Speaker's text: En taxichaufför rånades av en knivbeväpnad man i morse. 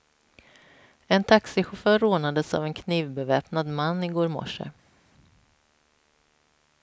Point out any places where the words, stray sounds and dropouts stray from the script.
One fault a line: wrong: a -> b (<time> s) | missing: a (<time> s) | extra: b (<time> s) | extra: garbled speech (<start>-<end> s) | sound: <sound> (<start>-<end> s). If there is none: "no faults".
extra: går (4.1 s)